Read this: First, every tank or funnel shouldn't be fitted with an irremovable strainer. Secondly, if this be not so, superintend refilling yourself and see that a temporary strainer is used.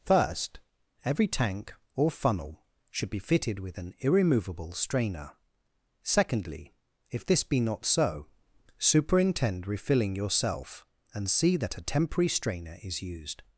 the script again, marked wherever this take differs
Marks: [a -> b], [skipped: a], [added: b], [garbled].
First, every tank or funnel [shouldn't -> should] be fitted with an irremovable strainer. Secondly, if this be not so, superintend refilling yourself and see that a temporary strainer is used.